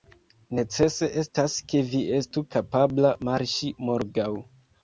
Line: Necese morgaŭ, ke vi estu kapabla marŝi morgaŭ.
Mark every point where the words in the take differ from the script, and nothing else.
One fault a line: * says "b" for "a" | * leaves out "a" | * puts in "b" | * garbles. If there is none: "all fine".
* says "estas" for "morgaŭ"